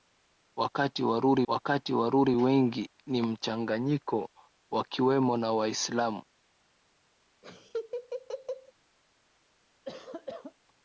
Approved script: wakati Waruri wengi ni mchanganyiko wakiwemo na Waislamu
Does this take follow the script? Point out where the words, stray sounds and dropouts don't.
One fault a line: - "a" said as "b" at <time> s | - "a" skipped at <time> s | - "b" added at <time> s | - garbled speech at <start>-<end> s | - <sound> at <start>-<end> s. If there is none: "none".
- "wakati Waruri" added at 1.5 s
- laugh at 7.4-8.7 s
- cough at 9.9-10.5 s